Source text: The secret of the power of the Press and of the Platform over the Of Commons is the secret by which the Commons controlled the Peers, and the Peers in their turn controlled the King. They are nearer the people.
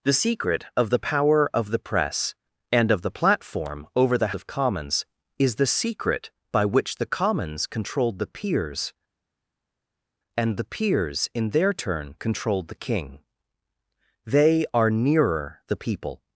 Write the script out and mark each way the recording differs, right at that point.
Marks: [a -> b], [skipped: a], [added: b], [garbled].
The secret of the power of the Press and of the Platform over the Of Commons is the secret by which the Commons controlled the Peers, and the Peers in their turn controlled the King. They are nearer the people.